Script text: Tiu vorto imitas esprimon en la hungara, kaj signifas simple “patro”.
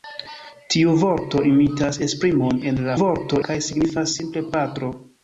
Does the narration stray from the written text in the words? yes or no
yes